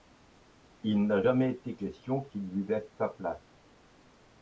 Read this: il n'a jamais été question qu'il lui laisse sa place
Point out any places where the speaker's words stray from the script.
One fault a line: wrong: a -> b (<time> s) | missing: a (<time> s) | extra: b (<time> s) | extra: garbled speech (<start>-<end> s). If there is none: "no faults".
no faults